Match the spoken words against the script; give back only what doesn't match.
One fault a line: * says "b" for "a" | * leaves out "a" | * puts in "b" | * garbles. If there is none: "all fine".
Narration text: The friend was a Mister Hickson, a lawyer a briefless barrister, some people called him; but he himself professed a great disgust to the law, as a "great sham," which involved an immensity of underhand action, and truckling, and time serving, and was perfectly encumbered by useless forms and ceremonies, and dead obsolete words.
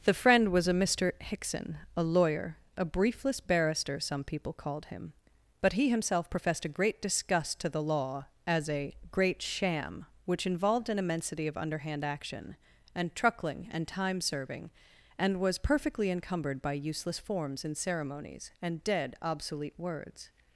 all fine